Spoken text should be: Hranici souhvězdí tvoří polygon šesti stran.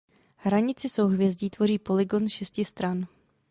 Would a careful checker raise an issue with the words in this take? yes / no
no